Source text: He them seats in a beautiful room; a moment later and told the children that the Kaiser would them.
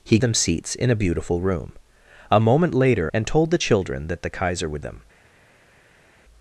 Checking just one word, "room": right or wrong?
right